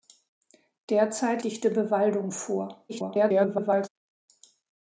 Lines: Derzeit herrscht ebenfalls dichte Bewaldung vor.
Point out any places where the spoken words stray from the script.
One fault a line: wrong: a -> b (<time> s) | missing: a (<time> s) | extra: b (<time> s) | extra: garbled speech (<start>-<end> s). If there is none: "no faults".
missing: herrscht ebenfalls (1.4 s)
extra: garbled speech (2.9-3.9 s)